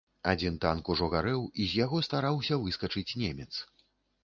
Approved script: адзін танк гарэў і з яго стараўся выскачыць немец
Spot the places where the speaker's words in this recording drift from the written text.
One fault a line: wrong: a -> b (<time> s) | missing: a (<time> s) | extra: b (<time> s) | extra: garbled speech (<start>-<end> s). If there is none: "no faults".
extra: ужо (0.9 s)